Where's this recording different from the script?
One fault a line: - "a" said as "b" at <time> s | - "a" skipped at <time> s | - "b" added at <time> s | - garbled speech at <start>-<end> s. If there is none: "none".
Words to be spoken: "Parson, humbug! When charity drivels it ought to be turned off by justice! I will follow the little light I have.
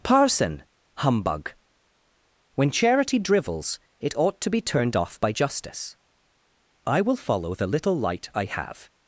none